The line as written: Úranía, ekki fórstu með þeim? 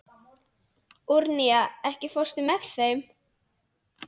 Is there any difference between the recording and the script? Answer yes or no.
no